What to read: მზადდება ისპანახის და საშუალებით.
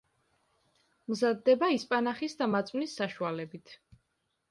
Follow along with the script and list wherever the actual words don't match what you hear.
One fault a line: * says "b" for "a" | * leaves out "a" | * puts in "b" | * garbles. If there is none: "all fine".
* puts in "მაწვნის"